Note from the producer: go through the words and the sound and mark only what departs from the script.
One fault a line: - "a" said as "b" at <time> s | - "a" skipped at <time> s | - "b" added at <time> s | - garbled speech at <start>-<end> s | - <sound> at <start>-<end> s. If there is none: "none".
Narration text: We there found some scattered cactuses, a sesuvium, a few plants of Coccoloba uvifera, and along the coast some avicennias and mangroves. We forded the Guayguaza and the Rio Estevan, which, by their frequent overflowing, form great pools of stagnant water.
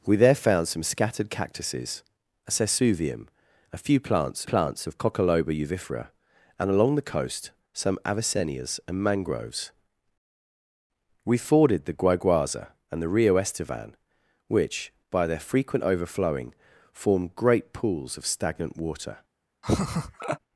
- "plants" added at 4.4 s
- laugh at 19.6-20.4 s